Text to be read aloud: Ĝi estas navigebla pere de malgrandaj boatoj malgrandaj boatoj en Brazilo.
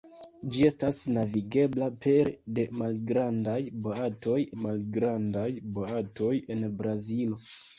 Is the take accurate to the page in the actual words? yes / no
yes